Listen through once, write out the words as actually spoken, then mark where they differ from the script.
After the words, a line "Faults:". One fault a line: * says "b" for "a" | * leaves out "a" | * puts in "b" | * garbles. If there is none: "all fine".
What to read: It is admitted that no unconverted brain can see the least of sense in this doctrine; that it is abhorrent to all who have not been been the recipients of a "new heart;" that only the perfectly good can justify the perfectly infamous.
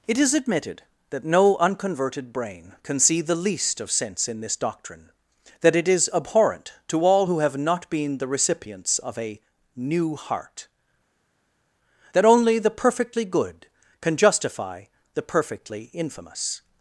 It is admitted that no unconverted brain can see the least of sense in this doctrine; that it is abhorrent to all who have not been the recipients of a "new heart;" that only the perfectly good can justify the perfectly infamous.
Faults:
* leaves out "been"